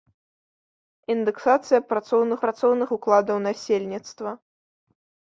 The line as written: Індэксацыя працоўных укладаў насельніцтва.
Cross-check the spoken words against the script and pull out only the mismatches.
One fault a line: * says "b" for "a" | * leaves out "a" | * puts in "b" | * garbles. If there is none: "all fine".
* puts in "працоўных"